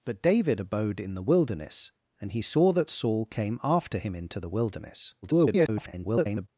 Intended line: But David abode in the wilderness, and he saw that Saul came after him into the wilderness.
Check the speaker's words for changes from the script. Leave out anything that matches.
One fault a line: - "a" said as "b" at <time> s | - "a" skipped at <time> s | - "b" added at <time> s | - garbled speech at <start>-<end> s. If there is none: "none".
- garbled speech at 5.2-6.5 s